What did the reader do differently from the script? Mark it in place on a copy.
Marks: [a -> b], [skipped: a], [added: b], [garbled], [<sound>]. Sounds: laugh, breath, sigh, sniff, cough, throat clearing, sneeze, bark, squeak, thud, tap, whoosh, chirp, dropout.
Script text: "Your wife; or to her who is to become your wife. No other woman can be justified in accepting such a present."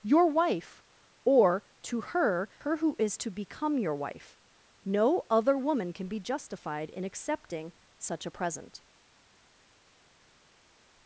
"Your wife; or to her [added: her] who is to become your wife. No other woman can be justified in accepting such a present."